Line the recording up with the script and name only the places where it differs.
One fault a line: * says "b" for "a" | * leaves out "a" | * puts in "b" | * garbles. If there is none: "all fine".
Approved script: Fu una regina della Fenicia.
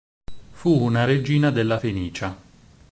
all fine